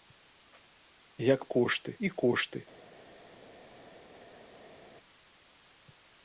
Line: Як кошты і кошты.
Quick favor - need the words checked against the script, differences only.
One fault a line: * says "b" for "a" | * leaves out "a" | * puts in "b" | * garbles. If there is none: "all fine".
all fine